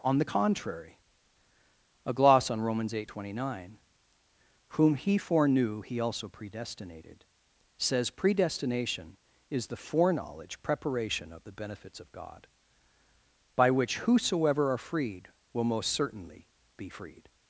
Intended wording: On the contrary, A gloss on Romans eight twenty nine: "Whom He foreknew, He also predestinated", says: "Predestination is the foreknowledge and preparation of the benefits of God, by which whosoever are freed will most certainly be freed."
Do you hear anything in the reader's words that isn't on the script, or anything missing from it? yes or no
yes